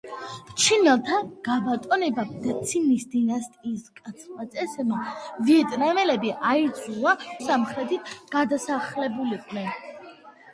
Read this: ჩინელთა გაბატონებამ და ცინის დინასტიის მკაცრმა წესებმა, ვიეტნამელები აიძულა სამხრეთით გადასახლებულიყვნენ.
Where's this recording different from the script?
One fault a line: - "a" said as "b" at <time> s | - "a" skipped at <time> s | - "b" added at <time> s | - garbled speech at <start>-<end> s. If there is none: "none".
none